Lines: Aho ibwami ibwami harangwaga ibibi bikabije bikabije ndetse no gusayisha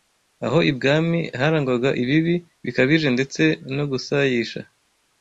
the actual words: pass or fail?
fail